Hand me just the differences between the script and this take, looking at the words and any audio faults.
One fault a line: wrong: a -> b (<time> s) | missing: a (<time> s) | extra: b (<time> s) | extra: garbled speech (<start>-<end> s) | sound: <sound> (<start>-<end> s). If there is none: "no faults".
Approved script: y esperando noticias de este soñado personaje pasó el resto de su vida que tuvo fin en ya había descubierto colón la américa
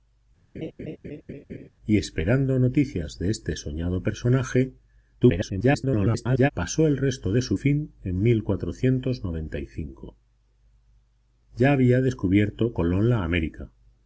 sound: laugh (0.5-1.7 s)
extra: garbled speech (5.2-6.5 s)
missing: vida que tuvo (7.6 s)